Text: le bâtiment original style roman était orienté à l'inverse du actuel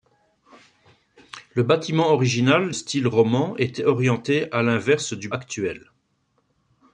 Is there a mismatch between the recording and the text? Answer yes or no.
no